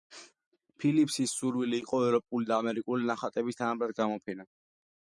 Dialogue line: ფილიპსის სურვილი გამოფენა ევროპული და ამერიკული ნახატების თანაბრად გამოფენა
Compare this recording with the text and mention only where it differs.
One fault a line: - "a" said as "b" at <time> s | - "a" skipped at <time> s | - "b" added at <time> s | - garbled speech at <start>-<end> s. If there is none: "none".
- "გამოფენა" said as "იყო" at 1.8 s